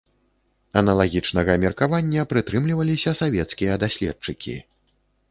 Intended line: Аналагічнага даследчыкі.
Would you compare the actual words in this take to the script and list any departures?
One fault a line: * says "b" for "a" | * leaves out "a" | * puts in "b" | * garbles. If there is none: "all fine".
* puts in "меркавання прытрымліваліся савецкія"